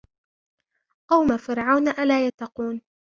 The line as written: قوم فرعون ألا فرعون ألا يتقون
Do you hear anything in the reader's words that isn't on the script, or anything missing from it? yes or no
yes